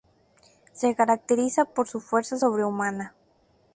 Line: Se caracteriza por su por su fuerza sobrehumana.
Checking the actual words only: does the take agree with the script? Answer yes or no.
no